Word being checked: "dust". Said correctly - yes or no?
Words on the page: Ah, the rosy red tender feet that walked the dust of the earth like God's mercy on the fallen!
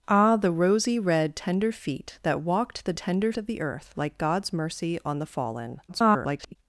no